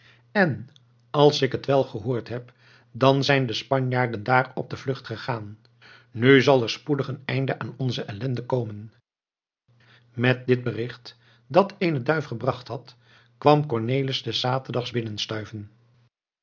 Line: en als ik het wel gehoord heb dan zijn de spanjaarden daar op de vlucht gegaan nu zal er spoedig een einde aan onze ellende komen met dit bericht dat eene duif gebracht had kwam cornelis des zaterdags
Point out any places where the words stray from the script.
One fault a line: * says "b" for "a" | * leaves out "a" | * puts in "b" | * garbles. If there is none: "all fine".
all fine